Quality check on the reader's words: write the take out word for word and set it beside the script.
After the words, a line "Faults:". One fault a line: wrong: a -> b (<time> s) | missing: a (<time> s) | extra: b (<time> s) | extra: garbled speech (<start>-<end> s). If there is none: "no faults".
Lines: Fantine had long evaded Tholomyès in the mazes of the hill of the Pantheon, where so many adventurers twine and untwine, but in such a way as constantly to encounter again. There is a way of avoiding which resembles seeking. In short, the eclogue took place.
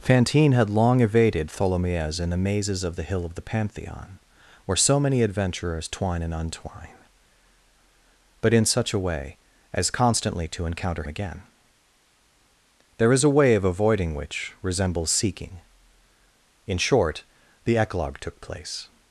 Fantine had long evaded Tholomyès in the mazes of the hill of the Pantheon, where so many adventurers twine and untwine, but in such a way as constantly to encounter again. There is a way of avoiding which resembles seeking. In short, the eclogue took place.
Faults:
no faults